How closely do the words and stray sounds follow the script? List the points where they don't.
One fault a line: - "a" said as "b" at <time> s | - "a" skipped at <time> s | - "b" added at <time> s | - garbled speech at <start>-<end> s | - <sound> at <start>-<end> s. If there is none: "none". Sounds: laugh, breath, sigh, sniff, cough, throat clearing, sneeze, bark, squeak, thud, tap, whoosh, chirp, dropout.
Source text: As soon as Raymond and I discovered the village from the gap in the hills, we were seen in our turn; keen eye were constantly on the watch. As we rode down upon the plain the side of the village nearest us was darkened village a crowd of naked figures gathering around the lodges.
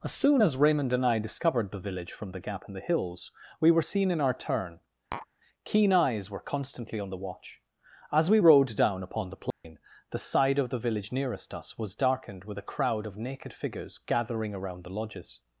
- tap at 5.1-5.3 s
- "eye" said as "eyes" at 5.9 s
- dropout at 9.5-9.6 s
- "village" said as "with" at 12.4 s